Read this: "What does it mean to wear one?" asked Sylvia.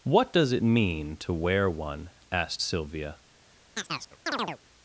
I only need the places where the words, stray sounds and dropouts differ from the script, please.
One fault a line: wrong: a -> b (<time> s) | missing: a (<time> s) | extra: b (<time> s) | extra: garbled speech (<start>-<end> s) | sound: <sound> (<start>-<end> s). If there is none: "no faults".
sound: chirp (3.7-4.6 s)